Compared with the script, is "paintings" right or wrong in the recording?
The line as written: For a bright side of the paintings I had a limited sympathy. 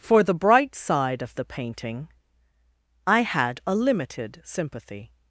wrong